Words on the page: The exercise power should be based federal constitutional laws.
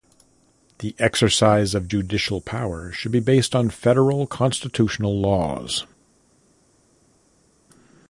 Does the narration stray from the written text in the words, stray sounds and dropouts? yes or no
yes